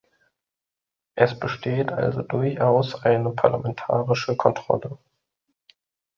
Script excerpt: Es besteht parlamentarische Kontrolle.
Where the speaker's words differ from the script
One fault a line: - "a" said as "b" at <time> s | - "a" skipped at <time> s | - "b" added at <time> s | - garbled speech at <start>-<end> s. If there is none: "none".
- "also durchaus eine" added at 1.9 s